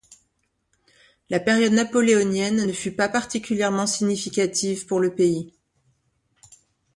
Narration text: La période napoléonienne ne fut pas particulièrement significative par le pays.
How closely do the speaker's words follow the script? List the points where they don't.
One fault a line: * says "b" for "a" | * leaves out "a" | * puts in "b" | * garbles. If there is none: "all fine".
* says "pour" for "par"